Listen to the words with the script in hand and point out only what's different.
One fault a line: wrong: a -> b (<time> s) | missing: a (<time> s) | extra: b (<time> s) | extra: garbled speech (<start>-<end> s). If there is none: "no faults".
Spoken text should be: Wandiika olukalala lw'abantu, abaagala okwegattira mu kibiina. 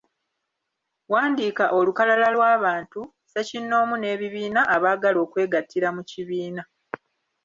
extra: ssekinnoomu n'ebibiina (3.1 s)